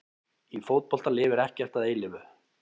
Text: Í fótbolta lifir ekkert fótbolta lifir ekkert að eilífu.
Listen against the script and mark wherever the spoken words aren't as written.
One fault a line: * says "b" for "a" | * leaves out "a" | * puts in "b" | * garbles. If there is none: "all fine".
* leaves out "fótbolta lifir ekkert"